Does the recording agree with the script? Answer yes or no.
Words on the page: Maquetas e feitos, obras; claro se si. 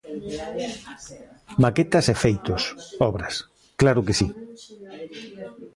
no